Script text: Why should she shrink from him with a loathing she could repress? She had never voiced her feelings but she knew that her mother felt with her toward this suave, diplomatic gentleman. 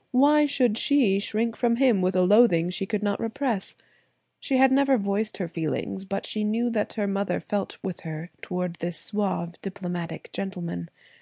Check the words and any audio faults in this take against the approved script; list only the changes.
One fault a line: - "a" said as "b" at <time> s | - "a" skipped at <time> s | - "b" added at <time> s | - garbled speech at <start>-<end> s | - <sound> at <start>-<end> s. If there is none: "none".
- "not" added at 3.0 s